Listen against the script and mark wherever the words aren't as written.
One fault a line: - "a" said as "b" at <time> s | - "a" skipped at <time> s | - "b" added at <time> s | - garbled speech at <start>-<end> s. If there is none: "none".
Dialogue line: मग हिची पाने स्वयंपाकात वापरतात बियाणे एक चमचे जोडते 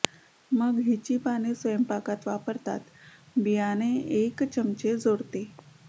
none